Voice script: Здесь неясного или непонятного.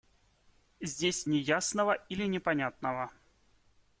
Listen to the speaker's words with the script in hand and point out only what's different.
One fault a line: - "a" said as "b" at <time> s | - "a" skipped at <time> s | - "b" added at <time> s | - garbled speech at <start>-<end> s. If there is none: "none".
none